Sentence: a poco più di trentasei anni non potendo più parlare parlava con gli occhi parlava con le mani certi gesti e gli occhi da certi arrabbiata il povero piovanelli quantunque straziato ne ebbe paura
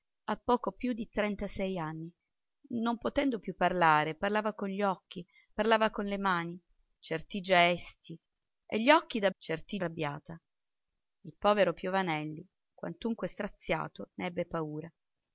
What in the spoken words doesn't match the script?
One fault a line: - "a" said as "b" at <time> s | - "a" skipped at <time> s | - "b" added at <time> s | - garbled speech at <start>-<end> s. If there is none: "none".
none